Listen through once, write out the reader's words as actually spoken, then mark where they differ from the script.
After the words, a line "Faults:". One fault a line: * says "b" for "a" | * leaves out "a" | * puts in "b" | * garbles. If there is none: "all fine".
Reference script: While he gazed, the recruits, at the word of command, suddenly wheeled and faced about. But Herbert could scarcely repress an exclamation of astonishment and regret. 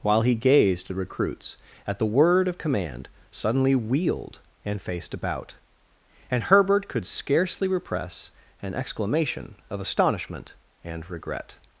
While he gazed, the recruits, at the word of command, suddenly wheeled and faced about. And Herbert could scarcely repress an exclamation of astonishment and regret.
Faults:
* says "And" for "But"